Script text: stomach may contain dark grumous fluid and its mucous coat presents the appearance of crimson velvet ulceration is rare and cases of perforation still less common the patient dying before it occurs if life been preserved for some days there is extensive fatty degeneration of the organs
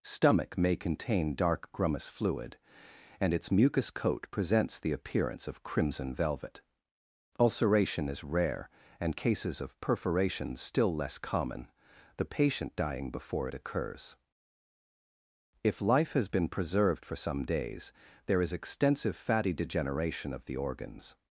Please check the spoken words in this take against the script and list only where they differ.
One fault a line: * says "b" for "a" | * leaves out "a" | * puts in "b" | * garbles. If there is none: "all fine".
* puts in "has"